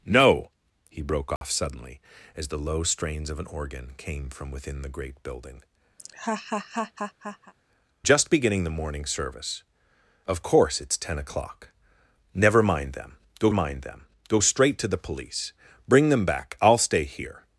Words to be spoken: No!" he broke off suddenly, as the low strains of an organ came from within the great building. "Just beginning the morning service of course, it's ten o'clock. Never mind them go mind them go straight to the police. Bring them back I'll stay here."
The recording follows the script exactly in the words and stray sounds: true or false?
false